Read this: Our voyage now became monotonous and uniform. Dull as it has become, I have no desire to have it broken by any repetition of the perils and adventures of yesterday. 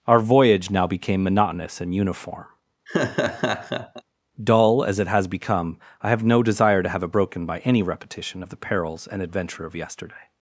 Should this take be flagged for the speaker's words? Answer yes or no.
yes